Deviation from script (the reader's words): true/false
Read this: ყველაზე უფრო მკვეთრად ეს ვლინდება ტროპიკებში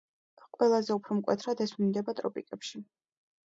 false